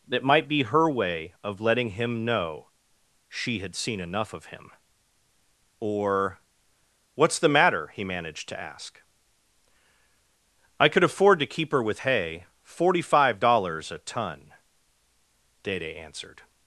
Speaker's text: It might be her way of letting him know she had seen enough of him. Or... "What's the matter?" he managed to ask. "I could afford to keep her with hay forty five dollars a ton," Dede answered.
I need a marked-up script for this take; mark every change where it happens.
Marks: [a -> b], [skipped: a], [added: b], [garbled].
It might be her way of letting him know she had seen enough of him. Or... "What's the matter?" he managed to ask. "I could afford to keep her with hay forty five dollars a ton," Dede answered.